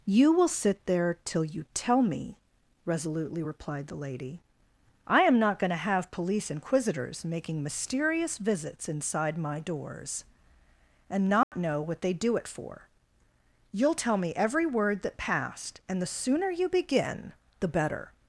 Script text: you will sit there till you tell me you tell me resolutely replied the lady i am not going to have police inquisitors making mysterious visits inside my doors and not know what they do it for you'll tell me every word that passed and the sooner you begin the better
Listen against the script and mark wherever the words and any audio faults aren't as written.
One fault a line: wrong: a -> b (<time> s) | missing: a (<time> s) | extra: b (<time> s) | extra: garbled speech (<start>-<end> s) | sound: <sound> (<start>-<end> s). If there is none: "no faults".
missing: you tell me (2.4 s)
sound: dropout (11.4-11.5 s)